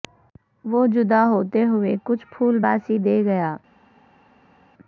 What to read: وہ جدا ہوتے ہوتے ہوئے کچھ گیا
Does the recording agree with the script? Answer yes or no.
no